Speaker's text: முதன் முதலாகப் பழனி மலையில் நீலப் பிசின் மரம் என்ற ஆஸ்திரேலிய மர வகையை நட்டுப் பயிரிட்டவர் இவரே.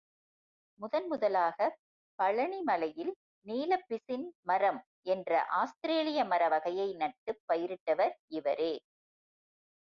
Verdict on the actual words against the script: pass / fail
pass